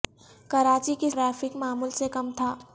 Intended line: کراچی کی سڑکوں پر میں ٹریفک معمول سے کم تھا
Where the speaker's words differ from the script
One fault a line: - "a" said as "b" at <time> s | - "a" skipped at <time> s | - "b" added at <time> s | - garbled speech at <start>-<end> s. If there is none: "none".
- "سڑکوں پر میں" skipped at 1.1 s